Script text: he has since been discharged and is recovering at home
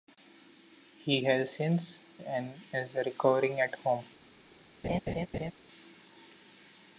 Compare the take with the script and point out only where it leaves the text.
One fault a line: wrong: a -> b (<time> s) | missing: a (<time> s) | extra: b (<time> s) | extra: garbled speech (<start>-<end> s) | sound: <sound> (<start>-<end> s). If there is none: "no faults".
missing: been discharged (2.0 s)
sound: laugh (4.8-5.5 s)